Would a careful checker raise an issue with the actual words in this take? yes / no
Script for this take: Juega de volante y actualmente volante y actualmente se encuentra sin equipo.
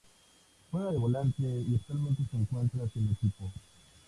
yes